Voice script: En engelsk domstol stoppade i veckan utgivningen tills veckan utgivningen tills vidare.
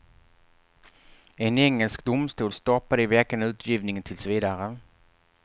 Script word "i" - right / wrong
right